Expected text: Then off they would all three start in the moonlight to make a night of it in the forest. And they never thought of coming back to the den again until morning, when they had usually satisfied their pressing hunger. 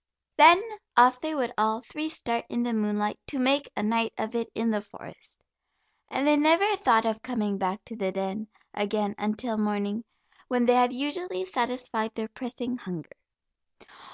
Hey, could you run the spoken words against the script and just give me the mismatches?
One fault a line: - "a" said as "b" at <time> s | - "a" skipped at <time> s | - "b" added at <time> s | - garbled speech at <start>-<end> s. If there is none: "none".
none